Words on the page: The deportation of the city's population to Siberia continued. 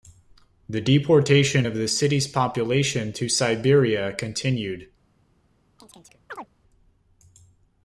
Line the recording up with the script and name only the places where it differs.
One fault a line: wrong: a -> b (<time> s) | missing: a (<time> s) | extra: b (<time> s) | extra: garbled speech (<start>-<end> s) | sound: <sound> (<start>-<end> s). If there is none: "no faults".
sound: chirp (5.8-6.5 s)